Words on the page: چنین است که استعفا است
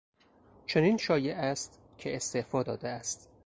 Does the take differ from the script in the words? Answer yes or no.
yes